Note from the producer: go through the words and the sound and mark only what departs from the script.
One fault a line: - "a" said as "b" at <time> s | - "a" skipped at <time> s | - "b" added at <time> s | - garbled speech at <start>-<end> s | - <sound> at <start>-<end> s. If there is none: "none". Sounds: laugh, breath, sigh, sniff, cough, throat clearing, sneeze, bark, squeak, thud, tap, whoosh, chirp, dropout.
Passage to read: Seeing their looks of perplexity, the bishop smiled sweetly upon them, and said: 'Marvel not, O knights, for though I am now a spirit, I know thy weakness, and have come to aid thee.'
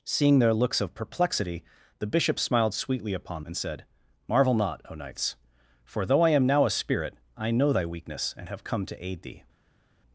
- "them" skipped at 3.4 s